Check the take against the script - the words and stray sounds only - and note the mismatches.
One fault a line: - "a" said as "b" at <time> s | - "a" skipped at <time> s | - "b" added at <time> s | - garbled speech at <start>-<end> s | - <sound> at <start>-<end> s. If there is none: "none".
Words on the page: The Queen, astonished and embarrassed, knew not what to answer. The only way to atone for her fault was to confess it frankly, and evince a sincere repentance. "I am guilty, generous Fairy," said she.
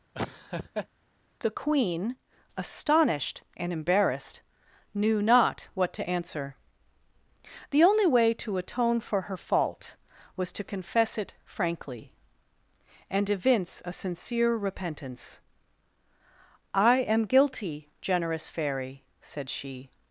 - laugh at 0.1-0.9 s